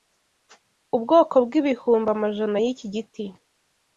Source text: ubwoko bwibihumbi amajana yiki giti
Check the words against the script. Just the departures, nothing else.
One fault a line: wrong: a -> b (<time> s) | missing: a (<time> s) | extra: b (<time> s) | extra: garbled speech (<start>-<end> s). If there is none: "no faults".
no faults